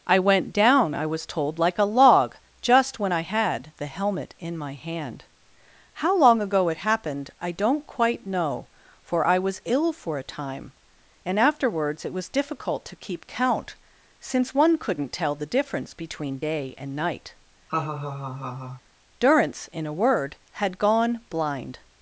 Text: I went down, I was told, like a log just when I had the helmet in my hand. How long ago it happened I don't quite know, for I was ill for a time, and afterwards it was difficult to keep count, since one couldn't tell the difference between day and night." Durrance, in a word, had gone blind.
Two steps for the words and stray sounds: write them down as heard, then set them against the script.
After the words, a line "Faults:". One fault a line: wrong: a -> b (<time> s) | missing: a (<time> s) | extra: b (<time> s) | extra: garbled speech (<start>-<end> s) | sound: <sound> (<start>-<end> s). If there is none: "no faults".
I went down, I was told, like a log just when I had the helmet in my hand. How long ago it happened I don't quite know, for I was ill for a time, and afterwards it was difficult to keep count, since one couldn't tell the difference between day and night." Durrance, in a word, had gone blind.
Faults:
sound: laugh (17.7-18.8 s)